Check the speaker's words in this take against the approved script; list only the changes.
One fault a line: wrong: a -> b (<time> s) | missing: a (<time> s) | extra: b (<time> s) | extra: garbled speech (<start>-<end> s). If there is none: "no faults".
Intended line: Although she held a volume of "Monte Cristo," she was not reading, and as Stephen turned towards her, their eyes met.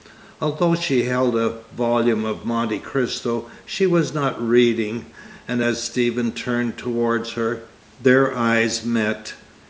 no faults